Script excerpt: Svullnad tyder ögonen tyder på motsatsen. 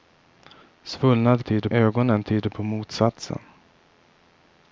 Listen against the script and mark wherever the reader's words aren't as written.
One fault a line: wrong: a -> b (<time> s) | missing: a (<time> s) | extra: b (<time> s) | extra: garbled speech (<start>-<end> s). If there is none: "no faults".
no faults